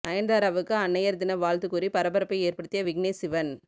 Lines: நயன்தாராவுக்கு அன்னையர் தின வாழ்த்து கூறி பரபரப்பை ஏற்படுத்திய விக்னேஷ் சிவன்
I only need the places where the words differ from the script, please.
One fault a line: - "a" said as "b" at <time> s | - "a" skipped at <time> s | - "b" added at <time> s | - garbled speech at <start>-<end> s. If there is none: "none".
none